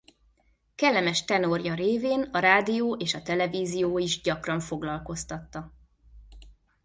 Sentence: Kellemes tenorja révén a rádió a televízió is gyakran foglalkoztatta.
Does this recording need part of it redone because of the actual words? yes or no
yes